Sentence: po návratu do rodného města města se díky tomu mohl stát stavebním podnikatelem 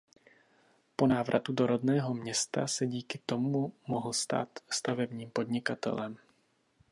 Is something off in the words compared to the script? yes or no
yes